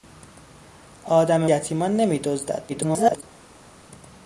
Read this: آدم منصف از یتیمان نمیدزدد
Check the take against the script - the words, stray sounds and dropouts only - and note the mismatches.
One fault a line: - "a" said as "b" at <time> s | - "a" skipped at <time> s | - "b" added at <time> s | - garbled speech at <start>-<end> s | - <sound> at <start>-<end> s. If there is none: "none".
- "منصف از" skipped at 1.5 s
- garbled speech at 2.7-3.2 s